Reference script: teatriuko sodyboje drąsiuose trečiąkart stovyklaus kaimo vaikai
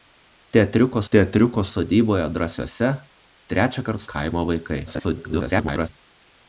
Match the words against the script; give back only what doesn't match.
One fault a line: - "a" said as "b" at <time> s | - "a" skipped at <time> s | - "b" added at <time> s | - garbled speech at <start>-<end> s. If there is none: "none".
- "teatriuko" added at 1.1 s
- "stovyklaus" skipped at 4.0 s
- garbled speech at 4.9-5.9 s